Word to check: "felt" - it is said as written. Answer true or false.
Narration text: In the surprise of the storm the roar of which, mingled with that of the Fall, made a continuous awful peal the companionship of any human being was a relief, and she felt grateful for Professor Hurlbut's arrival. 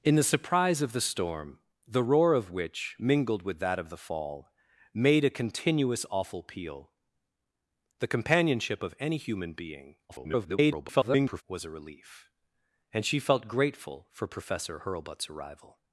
true